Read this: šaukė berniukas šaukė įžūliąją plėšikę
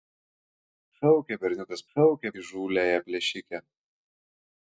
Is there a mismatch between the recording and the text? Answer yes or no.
no